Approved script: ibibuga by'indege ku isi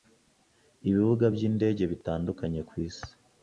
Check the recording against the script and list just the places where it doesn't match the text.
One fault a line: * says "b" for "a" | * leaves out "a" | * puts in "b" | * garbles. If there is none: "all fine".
* puts in "bitandukanye"